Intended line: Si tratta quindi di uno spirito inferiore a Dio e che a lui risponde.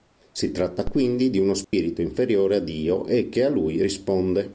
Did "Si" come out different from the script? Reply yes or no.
no